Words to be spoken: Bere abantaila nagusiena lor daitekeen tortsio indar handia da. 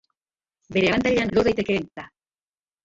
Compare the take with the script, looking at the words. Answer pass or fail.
fail